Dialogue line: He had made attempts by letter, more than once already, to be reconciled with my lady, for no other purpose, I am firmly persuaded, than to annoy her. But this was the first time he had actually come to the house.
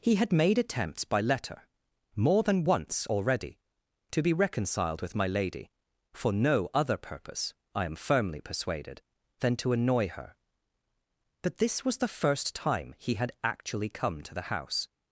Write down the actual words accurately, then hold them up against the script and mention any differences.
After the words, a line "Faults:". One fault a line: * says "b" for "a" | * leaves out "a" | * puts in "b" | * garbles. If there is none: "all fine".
He had made attempts by letter, more than once already, to be reconciled with my lady, for no other purpose, I am firmly persuaded, than to annoy her. But this was the first time he had actually come to the house.
Faults:
all fine